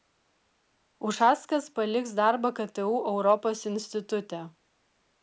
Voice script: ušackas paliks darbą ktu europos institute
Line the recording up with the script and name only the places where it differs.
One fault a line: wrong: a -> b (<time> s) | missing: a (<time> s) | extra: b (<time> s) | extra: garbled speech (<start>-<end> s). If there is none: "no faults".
no faults